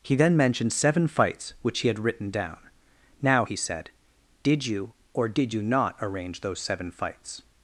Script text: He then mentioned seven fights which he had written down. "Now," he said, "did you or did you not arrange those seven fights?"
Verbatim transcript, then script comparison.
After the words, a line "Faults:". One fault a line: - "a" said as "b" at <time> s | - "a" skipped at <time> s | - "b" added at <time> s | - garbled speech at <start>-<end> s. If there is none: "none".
He then mentioned seven fights which he had written down. "Now," he said, "did you or did you not arrange those seven fights?"
Faults:
none